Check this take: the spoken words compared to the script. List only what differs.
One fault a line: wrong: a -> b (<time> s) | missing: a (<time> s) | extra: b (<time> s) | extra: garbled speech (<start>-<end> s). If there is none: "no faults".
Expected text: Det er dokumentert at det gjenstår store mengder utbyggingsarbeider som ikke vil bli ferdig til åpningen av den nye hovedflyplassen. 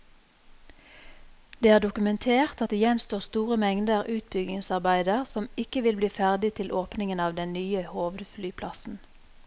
no faults